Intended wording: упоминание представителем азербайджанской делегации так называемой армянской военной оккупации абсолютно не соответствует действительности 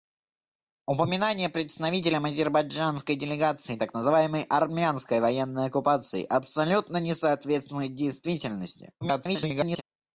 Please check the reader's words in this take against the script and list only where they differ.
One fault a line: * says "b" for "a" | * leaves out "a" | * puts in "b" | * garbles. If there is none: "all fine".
* garbles